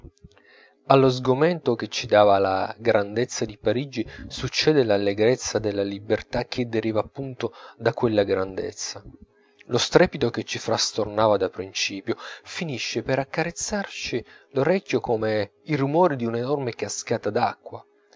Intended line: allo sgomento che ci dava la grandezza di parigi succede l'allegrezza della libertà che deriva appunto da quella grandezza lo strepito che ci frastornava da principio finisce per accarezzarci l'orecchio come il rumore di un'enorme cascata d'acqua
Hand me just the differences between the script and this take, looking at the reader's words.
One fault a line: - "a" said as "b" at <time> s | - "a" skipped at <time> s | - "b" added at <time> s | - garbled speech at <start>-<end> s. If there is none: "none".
none